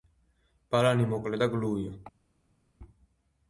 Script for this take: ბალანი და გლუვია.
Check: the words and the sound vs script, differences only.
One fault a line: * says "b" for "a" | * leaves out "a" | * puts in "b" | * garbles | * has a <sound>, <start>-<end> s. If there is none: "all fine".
* puts in "მოკლე"